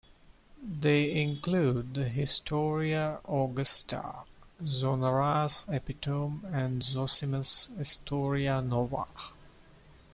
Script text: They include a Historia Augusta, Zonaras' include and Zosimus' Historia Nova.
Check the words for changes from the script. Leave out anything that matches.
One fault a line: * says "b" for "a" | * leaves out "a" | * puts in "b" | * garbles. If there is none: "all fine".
* says "the" for "a"
* says "epitome" for "include"